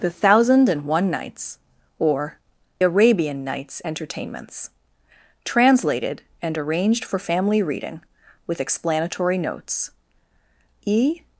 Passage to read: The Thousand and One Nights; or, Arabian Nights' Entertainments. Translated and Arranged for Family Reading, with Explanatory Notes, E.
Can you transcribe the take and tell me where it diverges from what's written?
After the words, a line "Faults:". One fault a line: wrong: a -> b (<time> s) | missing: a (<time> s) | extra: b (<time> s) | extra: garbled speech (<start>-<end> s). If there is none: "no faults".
The Thousand and One Nights; or, Arabian Nights' Entertainments. Translated and Arranged for Family Reading, with Explanatory Notes, E.
Faults:
no faults